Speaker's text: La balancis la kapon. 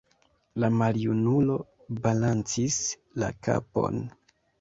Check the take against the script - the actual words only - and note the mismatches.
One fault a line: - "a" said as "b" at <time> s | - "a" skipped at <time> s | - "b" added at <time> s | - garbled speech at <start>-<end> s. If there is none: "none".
- "maljunulo" added at 0.8 s